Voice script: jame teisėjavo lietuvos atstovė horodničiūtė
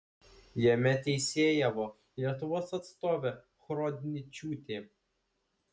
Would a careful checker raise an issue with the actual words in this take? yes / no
no